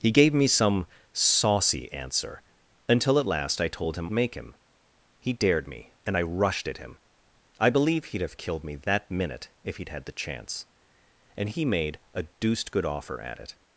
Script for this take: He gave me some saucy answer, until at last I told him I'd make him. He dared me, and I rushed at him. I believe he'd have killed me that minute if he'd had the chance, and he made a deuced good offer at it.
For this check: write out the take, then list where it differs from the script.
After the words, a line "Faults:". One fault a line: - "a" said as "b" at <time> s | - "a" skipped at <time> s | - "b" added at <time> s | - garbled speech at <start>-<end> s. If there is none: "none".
He gave me some saucy answer, until at last I told him Make him. He dared me, and I rushed at him. I believe he'd have killed me that minute if he'd had the chance, and he made a deuced good offer at it.
Faults:
- "I'd" skipped at 4.1 s